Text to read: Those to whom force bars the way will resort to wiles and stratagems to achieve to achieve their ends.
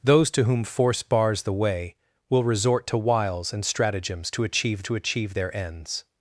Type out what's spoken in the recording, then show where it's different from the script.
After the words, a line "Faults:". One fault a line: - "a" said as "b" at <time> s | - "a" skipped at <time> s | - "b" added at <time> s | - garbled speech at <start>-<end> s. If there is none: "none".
Those to whom force bars the way will resort to wiles and stratagems to achieve to achieve their ends.
Faults:
none